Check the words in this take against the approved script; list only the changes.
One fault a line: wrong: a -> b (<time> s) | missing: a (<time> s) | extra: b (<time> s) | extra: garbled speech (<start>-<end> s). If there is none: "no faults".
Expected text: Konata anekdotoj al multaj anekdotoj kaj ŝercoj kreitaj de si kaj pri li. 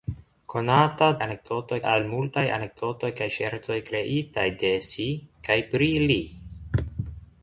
no faults